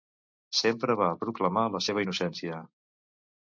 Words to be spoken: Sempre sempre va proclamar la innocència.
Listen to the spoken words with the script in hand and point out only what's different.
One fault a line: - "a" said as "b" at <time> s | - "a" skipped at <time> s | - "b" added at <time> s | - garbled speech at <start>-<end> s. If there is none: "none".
- "sempre" skipped at 0.9 s
- "seva" added at 1.9 s